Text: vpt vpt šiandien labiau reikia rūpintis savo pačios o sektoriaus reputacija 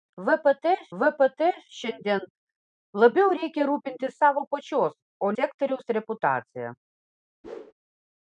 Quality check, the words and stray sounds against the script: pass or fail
fail